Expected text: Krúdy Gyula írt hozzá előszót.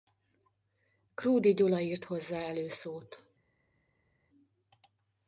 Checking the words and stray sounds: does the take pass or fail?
pass